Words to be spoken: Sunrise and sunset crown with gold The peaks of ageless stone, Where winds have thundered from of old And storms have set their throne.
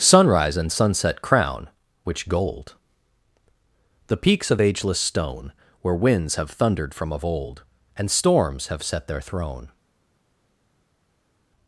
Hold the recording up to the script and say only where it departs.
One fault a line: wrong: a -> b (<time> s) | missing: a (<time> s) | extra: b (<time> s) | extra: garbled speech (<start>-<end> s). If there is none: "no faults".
wrong: with -> which (2.0 s)